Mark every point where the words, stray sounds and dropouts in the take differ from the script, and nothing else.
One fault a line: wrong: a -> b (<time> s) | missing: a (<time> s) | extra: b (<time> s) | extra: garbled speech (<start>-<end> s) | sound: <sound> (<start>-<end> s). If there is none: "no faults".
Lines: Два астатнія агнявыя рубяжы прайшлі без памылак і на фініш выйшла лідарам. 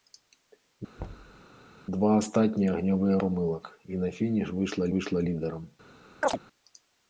sound: thud (1.0-1.4 s)
missing: рубяжы прайшлі без (3.2 s)
extra: выйшла (5.0 s)
sound: chirp (6.2-6.4 s)